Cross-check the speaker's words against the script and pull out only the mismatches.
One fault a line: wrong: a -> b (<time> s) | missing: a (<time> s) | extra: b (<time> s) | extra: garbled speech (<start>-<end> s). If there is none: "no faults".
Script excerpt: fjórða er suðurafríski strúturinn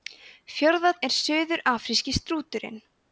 no faults